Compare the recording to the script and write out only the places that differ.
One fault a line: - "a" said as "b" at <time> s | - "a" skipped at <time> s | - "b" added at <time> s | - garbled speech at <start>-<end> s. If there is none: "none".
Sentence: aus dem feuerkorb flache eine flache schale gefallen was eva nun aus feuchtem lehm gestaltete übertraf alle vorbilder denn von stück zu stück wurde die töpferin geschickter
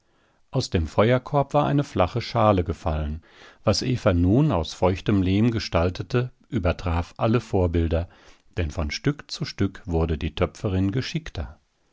- "flache" said as "war" at 1.5 s